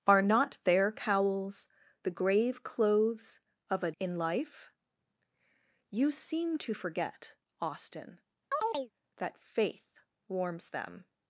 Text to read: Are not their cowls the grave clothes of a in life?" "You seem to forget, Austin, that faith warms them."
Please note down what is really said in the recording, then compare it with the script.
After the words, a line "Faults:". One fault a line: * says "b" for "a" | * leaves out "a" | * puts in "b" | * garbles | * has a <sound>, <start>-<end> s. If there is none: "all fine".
Are not their cowls the grave clothes of a in life?" "You seem to forget, Austin, that faith warms them."
Faults:
* has a chirp, 8.5-8.9 s